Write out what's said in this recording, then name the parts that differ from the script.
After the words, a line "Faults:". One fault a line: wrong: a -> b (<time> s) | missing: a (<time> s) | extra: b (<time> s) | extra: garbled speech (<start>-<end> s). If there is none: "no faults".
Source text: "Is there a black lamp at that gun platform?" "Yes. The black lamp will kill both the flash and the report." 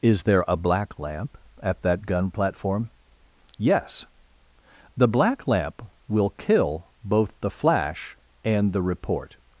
"Is there a black lamp at that gun platform?" "Yes. The black lamp will kill both the flash and the report."
Faults:
no faults